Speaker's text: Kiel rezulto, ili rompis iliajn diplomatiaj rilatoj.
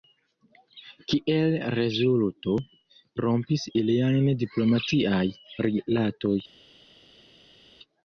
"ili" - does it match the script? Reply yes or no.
no